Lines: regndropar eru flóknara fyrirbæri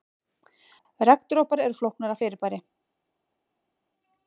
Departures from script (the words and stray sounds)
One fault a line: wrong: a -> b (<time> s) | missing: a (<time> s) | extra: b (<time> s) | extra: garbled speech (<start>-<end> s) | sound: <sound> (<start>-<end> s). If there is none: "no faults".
no faults